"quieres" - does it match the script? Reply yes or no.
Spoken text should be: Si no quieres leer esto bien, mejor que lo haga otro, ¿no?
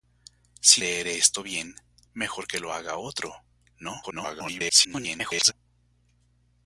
no